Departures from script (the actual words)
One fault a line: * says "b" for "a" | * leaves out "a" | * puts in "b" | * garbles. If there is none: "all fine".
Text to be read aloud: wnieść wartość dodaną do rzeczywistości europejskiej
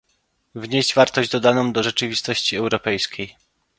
all fine